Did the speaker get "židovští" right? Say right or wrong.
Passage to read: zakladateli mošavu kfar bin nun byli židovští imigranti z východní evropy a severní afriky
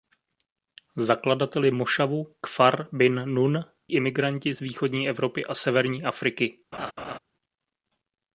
wrong